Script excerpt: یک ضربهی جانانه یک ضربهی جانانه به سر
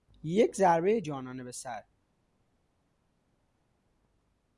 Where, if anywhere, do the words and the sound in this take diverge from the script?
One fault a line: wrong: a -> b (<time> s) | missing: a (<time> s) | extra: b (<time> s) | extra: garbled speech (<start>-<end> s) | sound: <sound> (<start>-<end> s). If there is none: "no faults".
missing: یک ضربهی جانانه (1.4 s)